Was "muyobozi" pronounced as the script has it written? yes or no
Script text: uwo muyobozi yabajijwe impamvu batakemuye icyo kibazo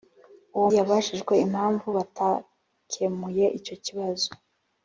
no